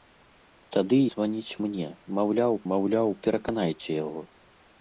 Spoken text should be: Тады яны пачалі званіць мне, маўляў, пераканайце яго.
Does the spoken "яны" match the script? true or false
false